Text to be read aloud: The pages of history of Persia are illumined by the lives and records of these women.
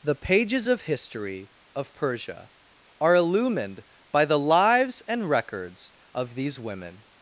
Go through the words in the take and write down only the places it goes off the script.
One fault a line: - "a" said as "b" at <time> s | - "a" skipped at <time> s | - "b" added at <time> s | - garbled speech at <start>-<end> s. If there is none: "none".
none